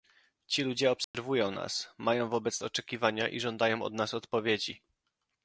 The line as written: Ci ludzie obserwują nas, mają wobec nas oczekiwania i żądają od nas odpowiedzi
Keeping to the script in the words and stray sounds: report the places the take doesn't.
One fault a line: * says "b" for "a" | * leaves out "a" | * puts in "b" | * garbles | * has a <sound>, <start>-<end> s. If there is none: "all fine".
* has a dropout, 1.0-1.1 s
* leaves out "nas"